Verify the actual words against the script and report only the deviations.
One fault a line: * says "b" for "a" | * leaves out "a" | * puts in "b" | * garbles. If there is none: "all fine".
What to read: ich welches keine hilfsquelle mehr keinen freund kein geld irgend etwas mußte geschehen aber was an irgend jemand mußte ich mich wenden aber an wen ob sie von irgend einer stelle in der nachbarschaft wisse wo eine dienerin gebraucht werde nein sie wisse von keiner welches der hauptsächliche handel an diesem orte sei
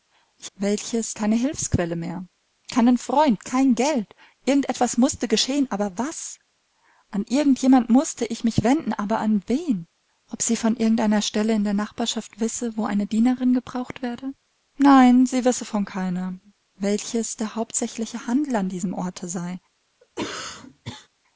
all fine